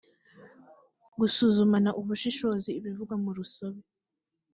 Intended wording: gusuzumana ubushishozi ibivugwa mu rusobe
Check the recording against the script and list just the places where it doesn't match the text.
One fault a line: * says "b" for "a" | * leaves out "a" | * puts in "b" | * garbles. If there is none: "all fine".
all fine